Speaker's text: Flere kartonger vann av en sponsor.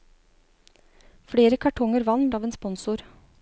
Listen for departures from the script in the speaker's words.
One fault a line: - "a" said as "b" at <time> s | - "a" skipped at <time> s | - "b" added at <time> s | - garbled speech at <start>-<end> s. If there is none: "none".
none